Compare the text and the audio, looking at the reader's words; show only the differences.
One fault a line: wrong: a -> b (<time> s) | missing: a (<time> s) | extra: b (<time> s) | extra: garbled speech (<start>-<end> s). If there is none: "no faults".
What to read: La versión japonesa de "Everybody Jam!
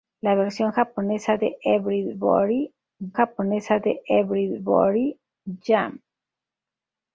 extra: japonesa de Everybody (3.1 s)